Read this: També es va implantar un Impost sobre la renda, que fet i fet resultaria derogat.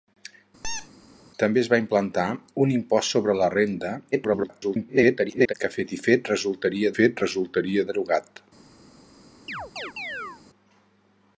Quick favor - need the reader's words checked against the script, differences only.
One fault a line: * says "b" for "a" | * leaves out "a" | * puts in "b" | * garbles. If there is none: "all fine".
* garbles
* puts in "fet resultaria"